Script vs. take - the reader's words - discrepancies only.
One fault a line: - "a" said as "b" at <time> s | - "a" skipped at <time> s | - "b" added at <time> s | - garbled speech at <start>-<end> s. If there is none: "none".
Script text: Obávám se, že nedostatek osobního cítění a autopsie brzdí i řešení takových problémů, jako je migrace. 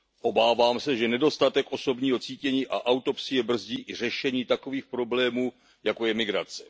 none